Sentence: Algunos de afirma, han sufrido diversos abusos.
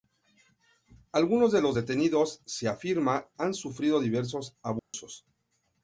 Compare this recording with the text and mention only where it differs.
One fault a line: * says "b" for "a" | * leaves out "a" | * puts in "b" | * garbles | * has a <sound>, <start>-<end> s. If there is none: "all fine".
* puts in "los detenidos se"
* has a dropout, 4.8-4.9 s